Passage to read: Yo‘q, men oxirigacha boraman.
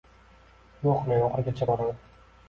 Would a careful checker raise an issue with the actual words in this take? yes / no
no